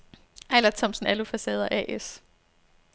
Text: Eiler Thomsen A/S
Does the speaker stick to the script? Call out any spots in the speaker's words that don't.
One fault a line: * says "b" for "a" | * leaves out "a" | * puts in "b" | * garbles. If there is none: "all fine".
* puts in "Alufacader"